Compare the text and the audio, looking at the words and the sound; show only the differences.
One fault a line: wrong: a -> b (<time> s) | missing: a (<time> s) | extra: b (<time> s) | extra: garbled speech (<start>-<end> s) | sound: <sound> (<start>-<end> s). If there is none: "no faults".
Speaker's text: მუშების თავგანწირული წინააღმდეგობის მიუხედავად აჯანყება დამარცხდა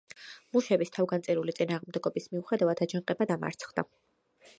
no faults